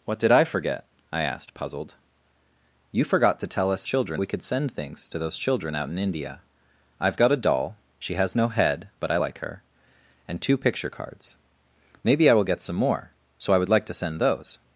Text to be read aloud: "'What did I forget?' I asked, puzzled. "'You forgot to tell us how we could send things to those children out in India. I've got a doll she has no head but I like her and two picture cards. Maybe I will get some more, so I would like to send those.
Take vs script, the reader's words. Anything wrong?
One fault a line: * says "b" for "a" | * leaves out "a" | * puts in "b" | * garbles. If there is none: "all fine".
* says "children" for "how"